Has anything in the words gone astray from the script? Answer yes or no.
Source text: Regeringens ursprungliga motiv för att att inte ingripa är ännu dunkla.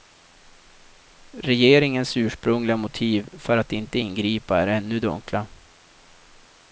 yes